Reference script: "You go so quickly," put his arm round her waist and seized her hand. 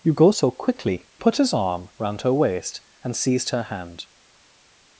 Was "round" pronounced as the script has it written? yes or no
yes